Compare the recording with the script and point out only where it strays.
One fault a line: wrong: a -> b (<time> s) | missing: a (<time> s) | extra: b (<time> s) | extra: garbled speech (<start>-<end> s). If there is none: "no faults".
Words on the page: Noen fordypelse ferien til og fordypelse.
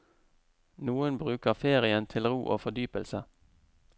wrong: fordypelse -> bruker (1.2 s)
extra: ro (2.3 s)